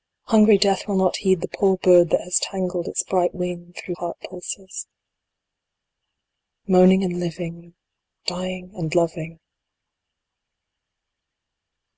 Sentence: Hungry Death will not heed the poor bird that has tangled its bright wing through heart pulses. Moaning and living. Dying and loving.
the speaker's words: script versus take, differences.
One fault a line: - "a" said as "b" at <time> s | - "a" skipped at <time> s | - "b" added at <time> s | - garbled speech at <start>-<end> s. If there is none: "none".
none